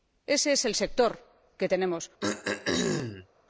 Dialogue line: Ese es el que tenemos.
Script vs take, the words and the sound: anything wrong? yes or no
yes